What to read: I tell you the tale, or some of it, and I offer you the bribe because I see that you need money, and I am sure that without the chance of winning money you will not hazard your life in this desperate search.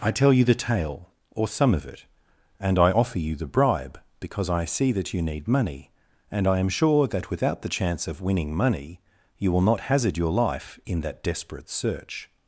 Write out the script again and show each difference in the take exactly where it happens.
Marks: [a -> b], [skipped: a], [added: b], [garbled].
I tell you the tale, or some of it, and I offer you the bribe because I see that you need money, and I am sure that without the chance of winning money you will not hazard your life in [this -> that] desperate search.